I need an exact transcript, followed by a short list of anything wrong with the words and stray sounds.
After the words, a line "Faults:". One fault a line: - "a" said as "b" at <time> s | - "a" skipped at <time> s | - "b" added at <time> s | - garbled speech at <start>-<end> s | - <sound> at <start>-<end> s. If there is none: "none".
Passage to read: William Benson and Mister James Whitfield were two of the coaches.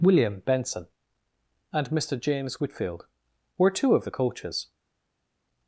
William Benson and Mister James Whitfield were two of the coaches.
Faults:
none